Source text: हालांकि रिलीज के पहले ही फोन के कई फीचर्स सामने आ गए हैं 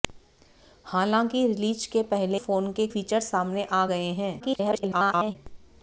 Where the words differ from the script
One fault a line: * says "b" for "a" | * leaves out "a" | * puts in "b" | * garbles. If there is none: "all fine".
* leaves out "ही"
* leaves out "कई"
* garbles